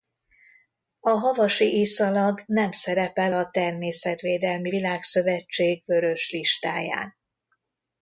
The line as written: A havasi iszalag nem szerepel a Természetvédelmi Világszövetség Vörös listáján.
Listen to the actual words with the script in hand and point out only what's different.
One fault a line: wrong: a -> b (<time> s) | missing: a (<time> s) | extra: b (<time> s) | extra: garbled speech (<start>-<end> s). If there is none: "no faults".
no faults